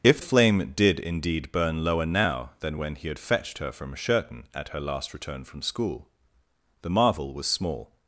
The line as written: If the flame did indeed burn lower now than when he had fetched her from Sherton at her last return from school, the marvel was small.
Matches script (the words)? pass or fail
fail